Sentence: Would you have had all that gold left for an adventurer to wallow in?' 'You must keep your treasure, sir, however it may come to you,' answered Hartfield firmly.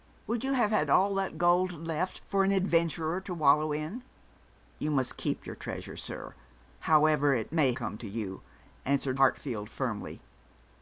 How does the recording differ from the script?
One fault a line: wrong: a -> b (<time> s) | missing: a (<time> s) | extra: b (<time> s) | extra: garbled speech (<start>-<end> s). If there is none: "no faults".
no faults